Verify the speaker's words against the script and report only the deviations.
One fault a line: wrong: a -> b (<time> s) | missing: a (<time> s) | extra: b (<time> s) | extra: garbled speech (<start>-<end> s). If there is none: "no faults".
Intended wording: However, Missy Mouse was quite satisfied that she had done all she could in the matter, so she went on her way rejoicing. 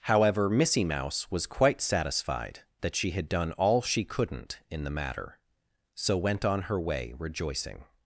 wrong: could -> couldn't (4.0 s)
missing: she (6.2 s)